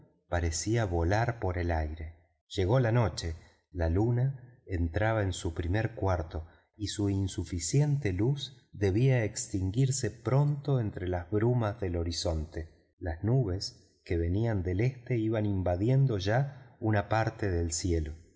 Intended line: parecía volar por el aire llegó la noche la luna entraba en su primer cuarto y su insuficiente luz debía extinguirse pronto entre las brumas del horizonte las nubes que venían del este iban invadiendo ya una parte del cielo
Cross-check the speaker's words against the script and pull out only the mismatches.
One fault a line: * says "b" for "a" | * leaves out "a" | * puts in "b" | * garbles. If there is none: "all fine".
all fine